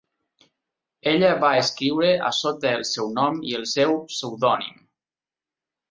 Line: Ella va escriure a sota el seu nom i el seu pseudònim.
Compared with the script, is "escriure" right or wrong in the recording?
right